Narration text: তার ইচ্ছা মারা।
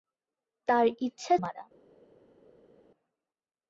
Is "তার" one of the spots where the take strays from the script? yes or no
no